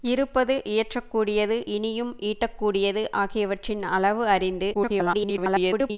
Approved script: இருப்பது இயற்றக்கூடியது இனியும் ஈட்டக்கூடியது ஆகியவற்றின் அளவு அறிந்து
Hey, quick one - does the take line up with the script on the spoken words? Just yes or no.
no